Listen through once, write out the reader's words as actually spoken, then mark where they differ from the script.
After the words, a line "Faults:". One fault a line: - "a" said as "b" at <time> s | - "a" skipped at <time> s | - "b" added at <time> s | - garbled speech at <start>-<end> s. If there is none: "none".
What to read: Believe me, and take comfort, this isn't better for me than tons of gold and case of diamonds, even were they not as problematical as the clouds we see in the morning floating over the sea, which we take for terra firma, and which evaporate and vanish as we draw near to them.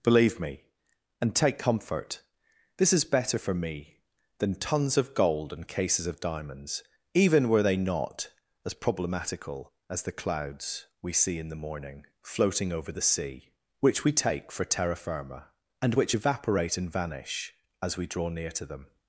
Believe me, and take comfort, this is better for me than tons of gold and cases of diamonds, even were they not as problematical as the clouds we see in the morning floating over the sea, which we take for terra firma, and which evaporate and vanish as we draw near to them.
Faults:
- "isn't" said as "is" at 2.9 s
- "case" said as "cases" at 5.7 s